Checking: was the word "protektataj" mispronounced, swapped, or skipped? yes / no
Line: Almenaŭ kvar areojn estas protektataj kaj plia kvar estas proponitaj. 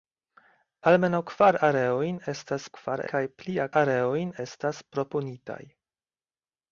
yes